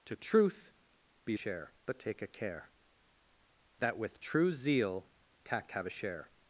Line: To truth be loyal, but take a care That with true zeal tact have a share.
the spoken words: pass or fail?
fail